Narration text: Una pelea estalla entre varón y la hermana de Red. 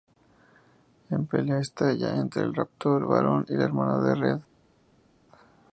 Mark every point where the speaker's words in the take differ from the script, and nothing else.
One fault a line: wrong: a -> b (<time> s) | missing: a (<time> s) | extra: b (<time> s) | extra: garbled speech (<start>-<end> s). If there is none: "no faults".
extra: el raptor (2.4 s)